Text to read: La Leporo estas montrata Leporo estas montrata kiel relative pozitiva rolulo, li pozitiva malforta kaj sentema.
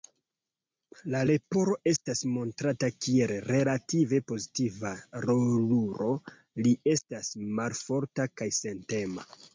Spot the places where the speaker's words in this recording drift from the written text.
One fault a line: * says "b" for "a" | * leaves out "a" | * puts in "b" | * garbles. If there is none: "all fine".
* leaves out "Leporo estas montrata"
* says "estas" for "pozitiva"